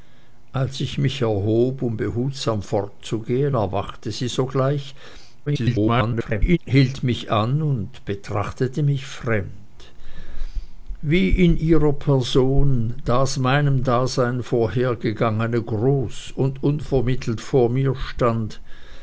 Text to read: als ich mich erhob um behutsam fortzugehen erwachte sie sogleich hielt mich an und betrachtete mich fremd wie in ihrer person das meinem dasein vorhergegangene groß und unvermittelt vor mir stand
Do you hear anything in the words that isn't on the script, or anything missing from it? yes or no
yes